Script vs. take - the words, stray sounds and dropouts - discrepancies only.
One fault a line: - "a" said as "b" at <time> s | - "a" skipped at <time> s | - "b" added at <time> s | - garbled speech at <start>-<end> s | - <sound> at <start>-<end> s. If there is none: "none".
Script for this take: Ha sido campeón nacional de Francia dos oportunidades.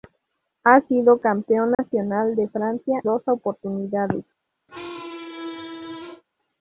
- dropout at 1.7-1.8 s
- squeak at 4.7-6.2 s